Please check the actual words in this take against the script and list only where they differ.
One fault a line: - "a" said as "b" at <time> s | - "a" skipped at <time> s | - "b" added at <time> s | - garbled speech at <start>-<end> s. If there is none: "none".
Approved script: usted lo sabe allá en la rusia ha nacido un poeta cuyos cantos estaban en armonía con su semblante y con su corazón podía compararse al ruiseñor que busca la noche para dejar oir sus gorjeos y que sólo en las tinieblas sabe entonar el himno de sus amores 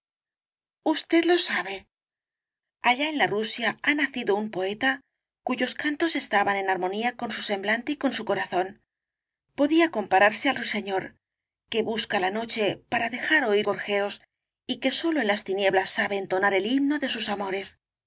- "sus" skipped at 13.7 s